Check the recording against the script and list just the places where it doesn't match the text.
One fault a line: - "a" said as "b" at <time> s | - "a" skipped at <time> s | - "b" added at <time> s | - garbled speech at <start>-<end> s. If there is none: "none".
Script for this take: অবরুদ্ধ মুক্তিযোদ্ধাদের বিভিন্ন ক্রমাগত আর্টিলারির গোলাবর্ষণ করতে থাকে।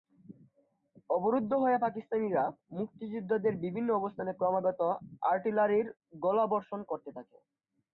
- "হয়ে পাকিস্তানিরা" added at 1.6 s
- "অবস্থানে" added at 4.0 s